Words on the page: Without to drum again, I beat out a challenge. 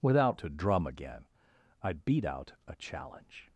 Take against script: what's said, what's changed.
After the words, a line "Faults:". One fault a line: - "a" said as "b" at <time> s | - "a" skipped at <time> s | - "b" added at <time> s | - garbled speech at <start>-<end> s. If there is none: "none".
Without to drum again, I beat out a challenge.
Faults:
none